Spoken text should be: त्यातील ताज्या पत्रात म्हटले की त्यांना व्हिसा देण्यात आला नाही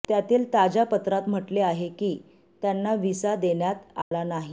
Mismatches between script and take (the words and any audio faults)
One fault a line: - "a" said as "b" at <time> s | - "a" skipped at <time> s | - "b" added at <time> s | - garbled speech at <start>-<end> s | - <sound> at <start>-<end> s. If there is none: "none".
- "आहे" added at 1.6 s
- dropout at 4.0-4.1 s